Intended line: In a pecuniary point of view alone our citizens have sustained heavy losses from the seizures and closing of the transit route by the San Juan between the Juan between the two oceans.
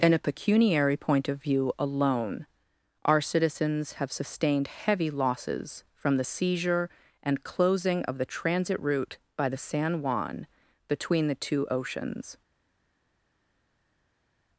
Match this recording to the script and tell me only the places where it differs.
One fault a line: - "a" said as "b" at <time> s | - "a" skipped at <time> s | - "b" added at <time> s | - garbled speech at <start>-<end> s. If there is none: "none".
- "seizures" said as "seizure" at 6.2 s
- "Juan between the" skipped at 11.4 s